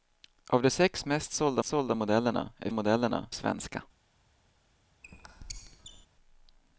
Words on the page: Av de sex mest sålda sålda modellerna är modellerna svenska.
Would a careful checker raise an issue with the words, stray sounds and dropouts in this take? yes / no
yes